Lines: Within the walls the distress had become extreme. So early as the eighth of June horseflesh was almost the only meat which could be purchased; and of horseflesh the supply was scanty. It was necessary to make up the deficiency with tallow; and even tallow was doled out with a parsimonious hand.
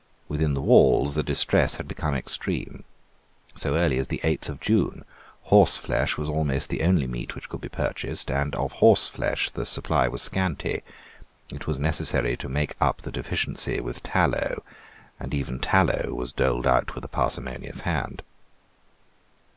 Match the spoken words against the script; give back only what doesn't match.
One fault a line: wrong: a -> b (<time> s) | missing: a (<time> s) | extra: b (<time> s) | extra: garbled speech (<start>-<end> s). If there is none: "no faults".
no faults